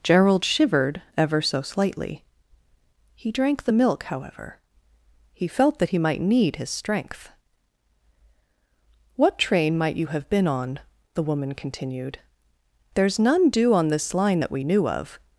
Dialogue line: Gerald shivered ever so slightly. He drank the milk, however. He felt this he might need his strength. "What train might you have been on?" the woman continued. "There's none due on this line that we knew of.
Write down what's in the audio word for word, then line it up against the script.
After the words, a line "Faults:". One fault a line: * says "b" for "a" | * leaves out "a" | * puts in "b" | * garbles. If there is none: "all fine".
Gerald shivered ever so slightly. He drank the milk, however. He felt that he might need his strength. "What train might you have been on?" the woman continued. "There's none due on this line that we knew of.
Faults:
* says "that" for "this"